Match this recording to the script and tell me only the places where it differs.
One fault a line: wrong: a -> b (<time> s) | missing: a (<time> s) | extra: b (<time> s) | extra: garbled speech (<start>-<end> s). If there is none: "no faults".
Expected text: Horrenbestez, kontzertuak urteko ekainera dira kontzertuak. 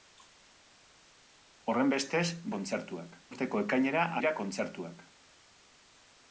no faults